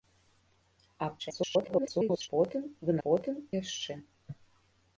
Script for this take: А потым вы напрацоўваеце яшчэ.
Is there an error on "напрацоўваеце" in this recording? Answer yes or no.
yes